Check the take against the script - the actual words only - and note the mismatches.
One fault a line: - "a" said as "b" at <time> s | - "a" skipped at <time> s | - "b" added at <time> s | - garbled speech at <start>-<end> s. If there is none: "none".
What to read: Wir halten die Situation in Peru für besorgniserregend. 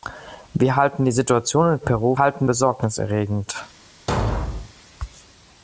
- "für" said as "halten" at 2.2 s